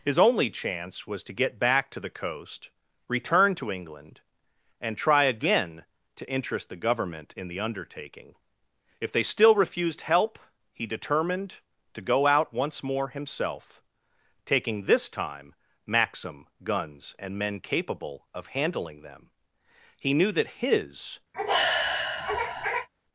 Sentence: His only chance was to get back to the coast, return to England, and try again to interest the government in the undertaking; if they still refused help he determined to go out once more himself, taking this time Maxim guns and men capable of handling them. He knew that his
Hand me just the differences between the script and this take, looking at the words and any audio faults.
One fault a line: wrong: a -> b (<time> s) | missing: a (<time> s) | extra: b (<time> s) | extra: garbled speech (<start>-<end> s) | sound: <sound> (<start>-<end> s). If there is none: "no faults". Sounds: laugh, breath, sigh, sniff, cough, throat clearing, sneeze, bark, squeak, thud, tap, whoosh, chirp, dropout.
sound: sigh (21.3-22.9 s)